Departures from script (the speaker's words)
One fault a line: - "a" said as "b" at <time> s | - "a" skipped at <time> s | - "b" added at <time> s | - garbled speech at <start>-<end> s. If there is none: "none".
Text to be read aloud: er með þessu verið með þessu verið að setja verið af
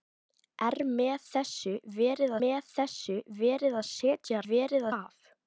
none